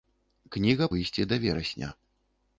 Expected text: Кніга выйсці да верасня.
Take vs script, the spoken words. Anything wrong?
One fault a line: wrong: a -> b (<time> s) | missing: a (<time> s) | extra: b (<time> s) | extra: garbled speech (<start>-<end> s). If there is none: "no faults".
no faults